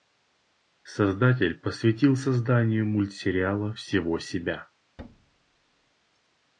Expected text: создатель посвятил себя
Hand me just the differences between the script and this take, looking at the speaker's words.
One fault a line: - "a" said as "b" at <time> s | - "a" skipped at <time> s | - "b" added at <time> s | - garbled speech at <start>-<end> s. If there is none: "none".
- "созданию мультсериала всего" added at 2.1 s